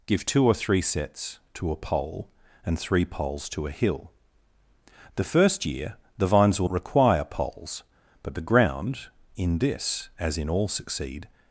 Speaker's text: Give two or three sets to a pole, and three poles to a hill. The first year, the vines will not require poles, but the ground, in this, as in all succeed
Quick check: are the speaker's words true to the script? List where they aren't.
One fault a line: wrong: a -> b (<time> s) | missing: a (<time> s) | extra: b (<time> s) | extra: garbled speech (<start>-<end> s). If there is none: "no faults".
missing: not (6.7 s)